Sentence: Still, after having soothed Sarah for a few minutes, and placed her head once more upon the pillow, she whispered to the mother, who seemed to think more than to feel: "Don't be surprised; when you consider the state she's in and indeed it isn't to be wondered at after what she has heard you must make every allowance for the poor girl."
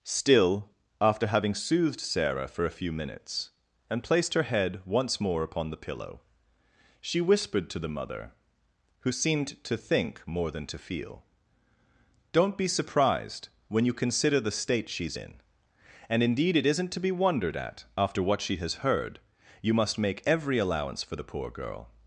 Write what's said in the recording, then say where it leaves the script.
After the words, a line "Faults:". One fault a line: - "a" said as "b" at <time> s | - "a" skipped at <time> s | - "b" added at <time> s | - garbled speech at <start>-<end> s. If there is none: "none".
Still, after having soothed Sarah for a few minutes, and placed her head once more upon the pillow, she whispered to the mother, who seemed to think more than to feel: "Don't be surprised; when you consider the state she's in and indeed it isn't to be wondered at after what she has heard you must make every allowance for the poor girl."
Faults:
none